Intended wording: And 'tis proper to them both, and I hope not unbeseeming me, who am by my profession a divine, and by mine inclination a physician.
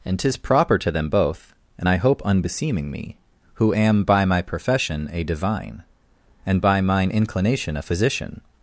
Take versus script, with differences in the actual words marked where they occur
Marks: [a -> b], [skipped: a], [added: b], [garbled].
And 'tis proper to them both, and I hope [skipped: not] unbeseeming me, who am by my profession a divine, and by mine inclination a physician.